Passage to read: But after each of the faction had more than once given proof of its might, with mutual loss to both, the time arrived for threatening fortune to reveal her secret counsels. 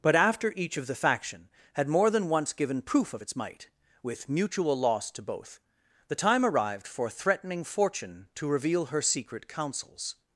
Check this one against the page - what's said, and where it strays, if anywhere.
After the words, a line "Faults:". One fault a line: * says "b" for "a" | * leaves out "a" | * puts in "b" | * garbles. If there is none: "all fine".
But after each of the faction had more than once given proof of its might, with mutual loss to both, the time arrived for threatening fortune to reveal her secret counsels.
Faults:
all fine